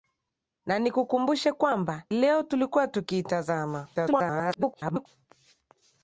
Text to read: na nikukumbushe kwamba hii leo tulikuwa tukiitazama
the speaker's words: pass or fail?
fail